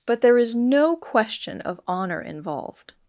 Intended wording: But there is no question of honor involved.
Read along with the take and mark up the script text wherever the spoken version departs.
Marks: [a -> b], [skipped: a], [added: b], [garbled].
But there is no question of honor involved.